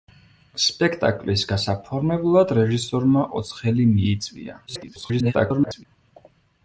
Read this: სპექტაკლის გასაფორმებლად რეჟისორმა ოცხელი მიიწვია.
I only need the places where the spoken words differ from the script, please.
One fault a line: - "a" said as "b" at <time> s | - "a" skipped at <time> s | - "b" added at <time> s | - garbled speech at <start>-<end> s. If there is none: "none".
- garbled speech at 4.7-5.9 s